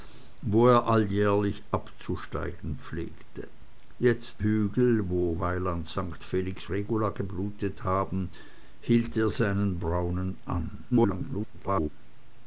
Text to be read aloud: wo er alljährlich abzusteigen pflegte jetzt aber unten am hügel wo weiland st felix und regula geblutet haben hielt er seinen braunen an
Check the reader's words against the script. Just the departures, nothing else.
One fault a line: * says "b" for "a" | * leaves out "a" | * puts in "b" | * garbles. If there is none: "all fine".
* leaves out "aber unten am"
* leaves out "und"
* garbles